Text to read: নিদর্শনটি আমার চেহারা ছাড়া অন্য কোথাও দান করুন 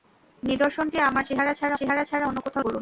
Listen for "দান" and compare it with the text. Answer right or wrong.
wrong